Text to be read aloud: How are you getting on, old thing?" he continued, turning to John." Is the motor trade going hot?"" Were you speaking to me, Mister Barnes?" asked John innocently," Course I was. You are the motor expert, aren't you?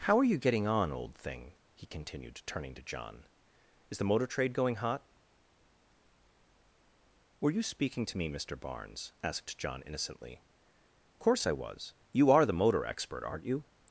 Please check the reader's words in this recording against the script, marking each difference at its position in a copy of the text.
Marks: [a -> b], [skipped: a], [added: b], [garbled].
How are you getting on, old thing?" he continued, turning to John." Is the motor trade going hot?"" Were you speaking to me, Mister Barnes?" asked John innocently," Course I was. You are the motor expert, aren't you?